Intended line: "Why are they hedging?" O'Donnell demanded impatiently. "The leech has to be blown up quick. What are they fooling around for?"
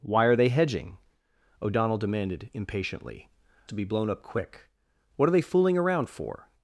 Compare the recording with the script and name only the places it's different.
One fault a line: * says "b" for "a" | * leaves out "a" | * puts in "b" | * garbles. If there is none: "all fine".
* leaves out "The leech has"